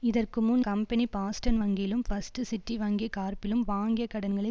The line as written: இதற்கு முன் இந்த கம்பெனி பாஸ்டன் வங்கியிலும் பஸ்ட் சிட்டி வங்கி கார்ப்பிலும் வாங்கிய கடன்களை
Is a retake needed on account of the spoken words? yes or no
yes